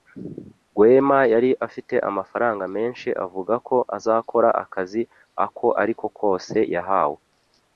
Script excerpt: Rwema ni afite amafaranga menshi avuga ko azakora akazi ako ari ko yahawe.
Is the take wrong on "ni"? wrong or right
wrong